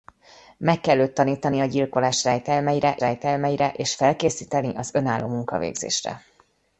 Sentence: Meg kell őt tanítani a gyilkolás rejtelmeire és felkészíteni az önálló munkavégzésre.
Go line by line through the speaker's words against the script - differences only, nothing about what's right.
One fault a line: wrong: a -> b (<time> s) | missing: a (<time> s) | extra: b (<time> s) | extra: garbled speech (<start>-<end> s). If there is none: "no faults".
extra: rejtelmeire (3.0 s)